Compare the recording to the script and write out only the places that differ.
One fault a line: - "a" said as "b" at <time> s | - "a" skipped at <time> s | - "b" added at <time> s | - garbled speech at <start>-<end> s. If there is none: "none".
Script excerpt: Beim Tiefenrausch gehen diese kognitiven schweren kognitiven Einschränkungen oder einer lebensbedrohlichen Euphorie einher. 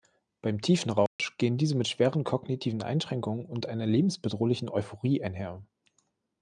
- "kognitiven" said as "mit" at 1.8 s
- "oder" said as "und" at 3.4 s